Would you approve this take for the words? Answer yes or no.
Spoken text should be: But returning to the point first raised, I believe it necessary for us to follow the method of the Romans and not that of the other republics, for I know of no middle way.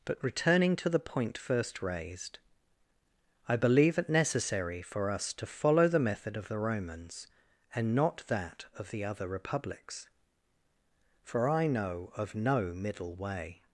yes